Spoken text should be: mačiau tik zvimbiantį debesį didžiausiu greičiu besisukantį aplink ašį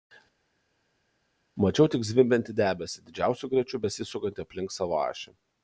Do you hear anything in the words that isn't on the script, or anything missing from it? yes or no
yes